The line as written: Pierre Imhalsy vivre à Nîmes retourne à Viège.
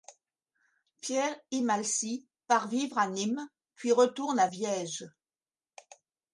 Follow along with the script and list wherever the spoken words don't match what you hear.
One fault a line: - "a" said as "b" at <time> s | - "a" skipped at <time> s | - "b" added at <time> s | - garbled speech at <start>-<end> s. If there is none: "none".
- "part" added at 2.5 s
- "puis" added at 3.7 s